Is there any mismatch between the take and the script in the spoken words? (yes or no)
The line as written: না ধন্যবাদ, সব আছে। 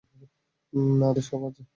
yes